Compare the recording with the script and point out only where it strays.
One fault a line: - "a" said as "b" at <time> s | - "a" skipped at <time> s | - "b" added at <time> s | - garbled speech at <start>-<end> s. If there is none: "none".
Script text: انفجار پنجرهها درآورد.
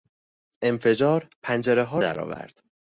none